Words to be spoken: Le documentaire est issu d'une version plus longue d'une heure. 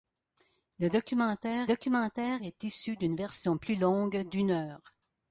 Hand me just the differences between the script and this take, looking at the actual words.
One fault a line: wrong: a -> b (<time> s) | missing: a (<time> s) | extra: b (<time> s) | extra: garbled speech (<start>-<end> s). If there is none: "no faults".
extra: documentaire (1.6 s)